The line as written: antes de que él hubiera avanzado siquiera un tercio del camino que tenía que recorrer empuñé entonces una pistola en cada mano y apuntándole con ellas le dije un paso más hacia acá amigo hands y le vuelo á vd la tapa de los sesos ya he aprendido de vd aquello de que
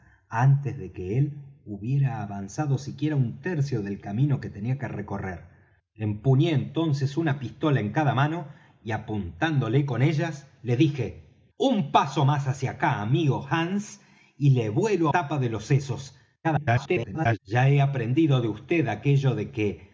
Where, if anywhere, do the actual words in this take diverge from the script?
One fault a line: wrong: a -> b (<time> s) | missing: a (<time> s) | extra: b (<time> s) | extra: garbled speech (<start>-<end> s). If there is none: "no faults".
missing: vd la (15.1 s)
extra: garbled speech (16.4-17.4 s)